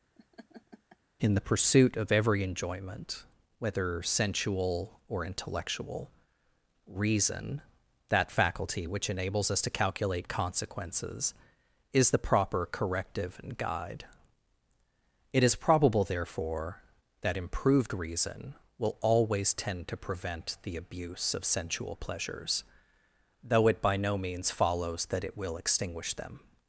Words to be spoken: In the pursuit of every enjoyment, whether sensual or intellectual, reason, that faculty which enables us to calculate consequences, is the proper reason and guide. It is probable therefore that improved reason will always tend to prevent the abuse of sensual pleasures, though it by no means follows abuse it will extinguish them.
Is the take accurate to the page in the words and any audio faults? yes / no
no